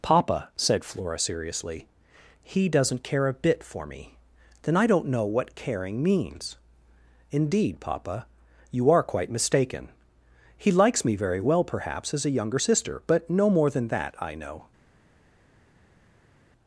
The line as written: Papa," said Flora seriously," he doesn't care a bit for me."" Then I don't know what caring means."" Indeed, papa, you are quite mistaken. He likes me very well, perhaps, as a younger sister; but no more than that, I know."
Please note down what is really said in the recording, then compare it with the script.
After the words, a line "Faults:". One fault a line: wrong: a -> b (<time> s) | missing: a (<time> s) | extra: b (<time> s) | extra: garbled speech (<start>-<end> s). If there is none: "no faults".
Papa," said Flora seriously," he doesn't care a bit for me."" Then I don't know what caring means."" Indeed, papa, you are quite mistaken. He likes me very well, perhaps, as a younger sister; but no more than that, I know."
Faults:
no faults